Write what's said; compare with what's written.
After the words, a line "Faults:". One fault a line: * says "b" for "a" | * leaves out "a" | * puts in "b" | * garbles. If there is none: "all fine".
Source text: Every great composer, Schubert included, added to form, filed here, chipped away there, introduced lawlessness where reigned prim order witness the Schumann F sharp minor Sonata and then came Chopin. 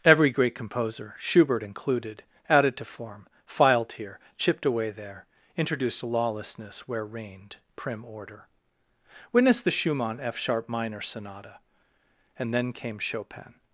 Every great composer, Schubert included, added to form, filed here, chipped away there, introduced lawlessness where reigned prim order witness the Schumann F sharp minor Sonata and then came Chopin.
Faults:
all fine